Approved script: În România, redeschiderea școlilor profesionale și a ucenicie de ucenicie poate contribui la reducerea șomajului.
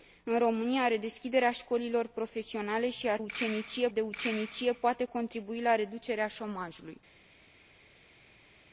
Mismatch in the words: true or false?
false